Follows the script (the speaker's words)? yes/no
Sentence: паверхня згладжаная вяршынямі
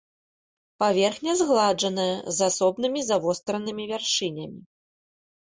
no